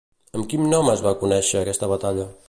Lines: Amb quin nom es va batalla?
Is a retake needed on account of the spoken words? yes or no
yes